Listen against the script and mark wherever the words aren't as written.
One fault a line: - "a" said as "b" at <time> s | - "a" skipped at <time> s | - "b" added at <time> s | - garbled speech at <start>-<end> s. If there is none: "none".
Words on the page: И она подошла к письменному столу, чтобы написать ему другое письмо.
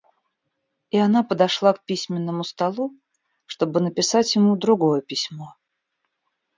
none